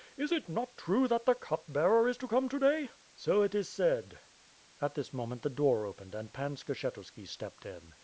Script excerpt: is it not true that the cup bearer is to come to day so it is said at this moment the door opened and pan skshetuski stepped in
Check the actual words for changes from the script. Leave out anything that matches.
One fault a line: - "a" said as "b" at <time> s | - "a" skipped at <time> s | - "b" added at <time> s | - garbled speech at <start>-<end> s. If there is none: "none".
none